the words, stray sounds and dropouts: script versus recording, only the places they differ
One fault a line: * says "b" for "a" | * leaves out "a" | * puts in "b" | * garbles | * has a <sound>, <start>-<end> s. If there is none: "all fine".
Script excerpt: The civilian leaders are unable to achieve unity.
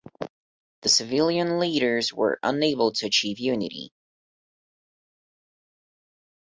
* says "were" for "are"